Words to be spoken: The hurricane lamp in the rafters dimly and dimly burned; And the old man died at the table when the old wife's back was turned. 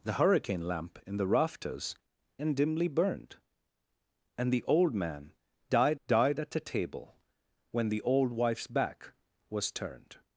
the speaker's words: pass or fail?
fail